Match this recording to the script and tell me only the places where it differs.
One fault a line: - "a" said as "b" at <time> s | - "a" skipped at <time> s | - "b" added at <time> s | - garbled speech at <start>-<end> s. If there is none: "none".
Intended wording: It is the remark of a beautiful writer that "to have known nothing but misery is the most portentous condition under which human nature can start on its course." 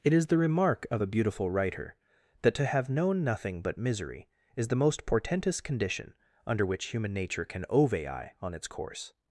- "start" said as "ovei" at 7.7 s